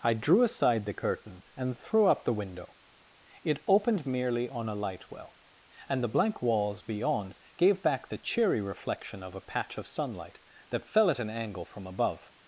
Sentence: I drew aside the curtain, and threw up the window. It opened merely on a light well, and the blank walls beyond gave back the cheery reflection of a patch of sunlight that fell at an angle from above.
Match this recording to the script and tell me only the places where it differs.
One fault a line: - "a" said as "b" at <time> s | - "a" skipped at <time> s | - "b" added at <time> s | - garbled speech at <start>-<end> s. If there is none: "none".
none